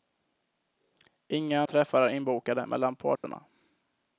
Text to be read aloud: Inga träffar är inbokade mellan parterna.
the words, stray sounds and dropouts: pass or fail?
fail